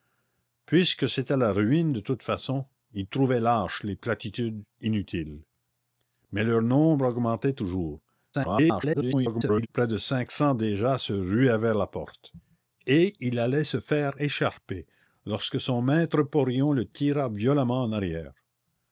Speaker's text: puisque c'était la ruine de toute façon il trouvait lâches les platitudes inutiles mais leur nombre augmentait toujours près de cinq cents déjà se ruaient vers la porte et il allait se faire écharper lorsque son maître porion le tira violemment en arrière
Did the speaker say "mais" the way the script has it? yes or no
yes